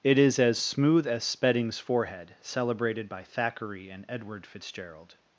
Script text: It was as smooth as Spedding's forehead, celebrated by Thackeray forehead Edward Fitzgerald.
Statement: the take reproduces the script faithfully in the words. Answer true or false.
false